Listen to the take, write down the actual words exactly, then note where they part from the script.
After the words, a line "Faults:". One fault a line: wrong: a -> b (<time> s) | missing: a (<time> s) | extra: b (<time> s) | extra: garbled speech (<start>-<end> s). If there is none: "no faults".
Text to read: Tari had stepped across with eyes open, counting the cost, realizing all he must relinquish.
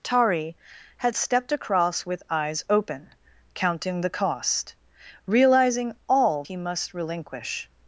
Tari had stepped across with eyes open, counting the cost, realizing all he must relinquish.
Faults:
no faults